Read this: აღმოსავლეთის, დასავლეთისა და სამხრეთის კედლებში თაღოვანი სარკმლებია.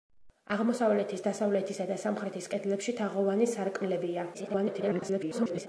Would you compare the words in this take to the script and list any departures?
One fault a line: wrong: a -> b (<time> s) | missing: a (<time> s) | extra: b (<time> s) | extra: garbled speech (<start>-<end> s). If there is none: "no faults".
extra: garbled speech (4.3-5.7 s)